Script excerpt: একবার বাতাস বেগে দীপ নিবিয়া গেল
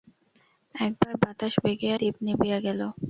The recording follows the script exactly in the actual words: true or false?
true